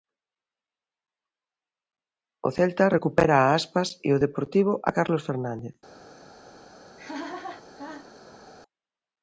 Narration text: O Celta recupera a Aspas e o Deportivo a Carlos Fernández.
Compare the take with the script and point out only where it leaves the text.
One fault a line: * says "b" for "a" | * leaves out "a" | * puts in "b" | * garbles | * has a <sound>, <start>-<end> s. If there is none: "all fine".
* has a laugh, 7.0-8.5 s